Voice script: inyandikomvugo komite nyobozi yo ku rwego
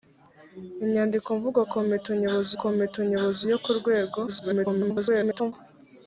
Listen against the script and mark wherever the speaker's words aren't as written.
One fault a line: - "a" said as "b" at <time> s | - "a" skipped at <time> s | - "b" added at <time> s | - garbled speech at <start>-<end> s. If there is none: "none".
- "komite nyobozi" added at 2.6 s
- garbled speech at 4.3-5.5 s